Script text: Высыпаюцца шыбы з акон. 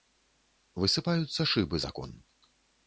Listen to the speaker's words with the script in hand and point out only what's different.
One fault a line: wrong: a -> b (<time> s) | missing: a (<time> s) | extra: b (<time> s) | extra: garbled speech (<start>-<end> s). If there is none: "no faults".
no faults